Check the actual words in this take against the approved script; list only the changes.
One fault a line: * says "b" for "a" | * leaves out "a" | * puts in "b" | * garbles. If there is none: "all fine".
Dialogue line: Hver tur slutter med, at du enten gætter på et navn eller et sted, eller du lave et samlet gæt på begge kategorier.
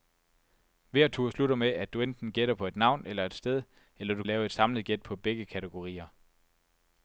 all fine